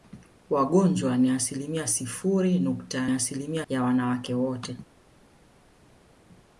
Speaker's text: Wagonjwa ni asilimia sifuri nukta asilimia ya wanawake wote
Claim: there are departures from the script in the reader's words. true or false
false